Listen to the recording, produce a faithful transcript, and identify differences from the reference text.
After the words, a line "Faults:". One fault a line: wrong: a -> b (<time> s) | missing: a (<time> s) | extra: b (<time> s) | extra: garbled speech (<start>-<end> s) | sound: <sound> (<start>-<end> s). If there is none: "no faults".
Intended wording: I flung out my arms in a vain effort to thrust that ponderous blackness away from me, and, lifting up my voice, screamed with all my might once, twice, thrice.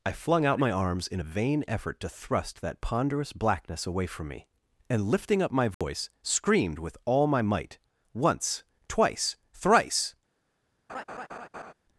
I flung out my arms in a vain effort to thrust that ponderous blackness away from me, and, lifting up my voice, screamed with all my might once, twice, thrice.
Faults:
sound: dropout (5.7-5.8 s)
sound: laugh (10.9-11.7 s)